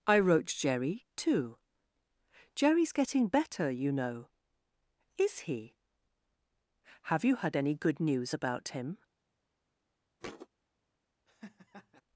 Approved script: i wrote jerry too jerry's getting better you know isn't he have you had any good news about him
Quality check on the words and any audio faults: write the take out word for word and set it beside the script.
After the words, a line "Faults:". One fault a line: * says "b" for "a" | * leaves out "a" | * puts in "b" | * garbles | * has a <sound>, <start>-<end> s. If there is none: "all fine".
i wrote jerry too jerry's getting better you know is he have you had any good news about him
Faults:
* says "is" for "isn't"
* has a thud, 10.2-10.5 s
* has a laugh, 11.3-12.0 s